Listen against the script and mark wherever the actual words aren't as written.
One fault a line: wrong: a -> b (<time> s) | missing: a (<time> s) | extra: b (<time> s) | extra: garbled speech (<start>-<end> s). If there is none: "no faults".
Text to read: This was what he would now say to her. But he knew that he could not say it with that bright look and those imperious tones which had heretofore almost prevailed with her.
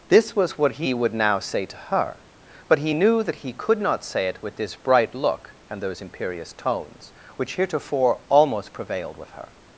wrong: that -> this (4.6 s)
missing: had (7.5 s)